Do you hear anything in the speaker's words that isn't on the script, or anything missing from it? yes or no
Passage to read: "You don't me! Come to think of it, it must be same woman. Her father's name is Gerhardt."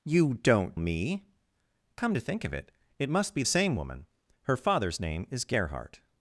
no